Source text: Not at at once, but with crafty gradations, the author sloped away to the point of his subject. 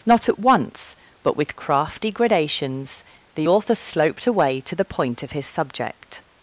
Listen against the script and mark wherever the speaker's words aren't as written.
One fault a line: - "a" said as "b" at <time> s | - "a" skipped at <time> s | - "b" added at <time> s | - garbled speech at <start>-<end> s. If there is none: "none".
- "at" skipped at 0.4 s